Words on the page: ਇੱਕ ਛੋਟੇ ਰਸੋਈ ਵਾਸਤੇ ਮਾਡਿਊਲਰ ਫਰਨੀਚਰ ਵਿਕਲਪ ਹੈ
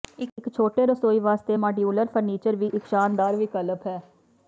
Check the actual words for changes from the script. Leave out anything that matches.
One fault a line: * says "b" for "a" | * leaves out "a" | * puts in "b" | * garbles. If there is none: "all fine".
* puts in "ਵੀ ਇੱਕ ਸ਼ਾਨਦਾਰ"